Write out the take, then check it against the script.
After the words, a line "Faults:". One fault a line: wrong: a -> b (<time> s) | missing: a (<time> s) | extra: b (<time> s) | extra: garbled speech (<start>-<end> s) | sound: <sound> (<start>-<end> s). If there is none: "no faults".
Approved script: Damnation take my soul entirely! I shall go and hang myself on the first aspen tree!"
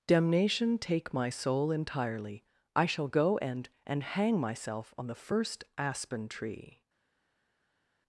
Damnation take my soul entirely! I shall go and and hang myself on the first aspen tree!"
Faults:
extra: and (3.8 s)